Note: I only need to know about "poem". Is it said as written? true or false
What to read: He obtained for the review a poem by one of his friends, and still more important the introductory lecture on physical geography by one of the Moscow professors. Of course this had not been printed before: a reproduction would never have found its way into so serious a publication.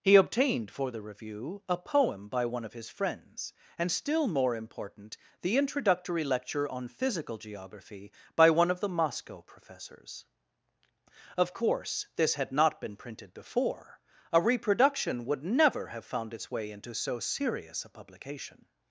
true